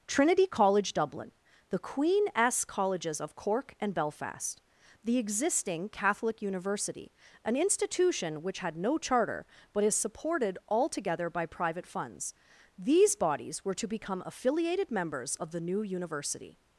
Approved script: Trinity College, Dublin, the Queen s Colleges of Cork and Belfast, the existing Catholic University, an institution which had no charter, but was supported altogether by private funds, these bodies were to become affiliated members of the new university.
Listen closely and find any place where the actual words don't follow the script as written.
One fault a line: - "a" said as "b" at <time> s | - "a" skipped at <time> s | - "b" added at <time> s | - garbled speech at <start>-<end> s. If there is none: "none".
- "was" said as "is" at 9.8 s